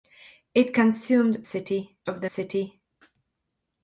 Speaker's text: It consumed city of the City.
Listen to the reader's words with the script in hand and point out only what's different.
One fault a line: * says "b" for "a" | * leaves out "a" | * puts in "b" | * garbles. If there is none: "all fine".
all fine